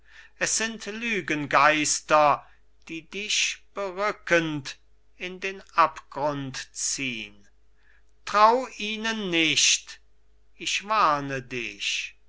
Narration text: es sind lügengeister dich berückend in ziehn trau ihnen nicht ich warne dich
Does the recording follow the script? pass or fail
fail